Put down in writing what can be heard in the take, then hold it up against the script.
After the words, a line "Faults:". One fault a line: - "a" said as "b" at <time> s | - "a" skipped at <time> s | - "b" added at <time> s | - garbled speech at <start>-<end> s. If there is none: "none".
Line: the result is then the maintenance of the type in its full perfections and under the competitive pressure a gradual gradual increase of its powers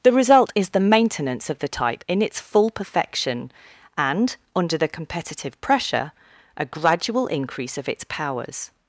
the result is the maintenance of the type in its full perfection and under the competitive pressure a gradual increase of its powers
Faults:
- "then" skipped at 0.7 s
- "perfections" said as "perfection" at 2.7 s
- "gradual" skipped at 7.3 s